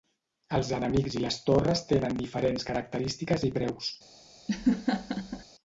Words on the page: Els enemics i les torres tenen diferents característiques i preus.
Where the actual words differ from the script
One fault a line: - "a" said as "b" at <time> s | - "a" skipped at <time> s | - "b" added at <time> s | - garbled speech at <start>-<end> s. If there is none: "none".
none